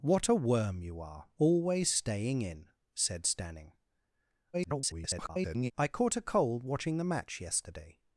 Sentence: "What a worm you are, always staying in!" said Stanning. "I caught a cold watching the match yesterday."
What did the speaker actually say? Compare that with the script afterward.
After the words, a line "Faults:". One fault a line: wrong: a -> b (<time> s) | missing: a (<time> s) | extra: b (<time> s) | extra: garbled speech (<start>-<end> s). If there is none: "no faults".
"What a worm you are, always staying in!" said Stanning. [garbled] "I caught a cold watching the match yesterday."
Faults:
extra: garbled speech (4.5-5.7 s)